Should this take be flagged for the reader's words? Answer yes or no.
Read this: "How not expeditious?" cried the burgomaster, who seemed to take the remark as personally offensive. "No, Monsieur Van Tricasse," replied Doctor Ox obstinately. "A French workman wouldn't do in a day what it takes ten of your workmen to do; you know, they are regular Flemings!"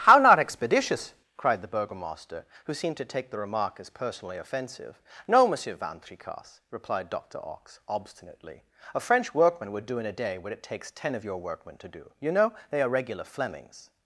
yes